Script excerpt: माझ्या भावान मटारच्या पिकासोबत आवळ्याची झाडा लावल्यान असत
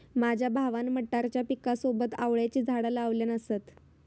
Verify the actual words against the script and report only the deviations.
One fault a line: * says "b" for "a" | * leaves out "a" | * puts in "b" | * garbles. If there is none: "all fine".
all fine